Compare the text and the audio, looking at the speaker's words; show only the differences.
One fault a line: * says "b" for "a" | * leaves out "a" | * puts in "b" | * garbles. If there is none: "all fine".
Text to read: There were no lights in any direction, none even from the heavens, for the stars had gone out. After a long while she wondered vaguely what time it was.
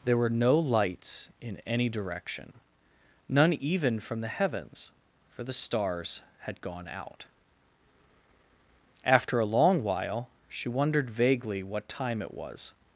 all fine